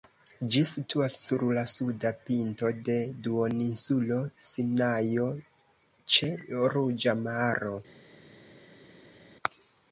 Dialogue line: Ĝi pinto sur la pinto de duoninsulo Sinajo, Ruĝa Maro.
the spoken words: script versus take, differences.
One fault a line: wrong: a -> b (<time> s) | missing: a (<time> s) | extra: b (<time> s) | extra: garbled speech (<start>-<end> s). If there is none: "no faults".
wrong: pinto -> situas (0.7 s)
extra: suda (1.7 s)
extra: ĉe (6.2 s)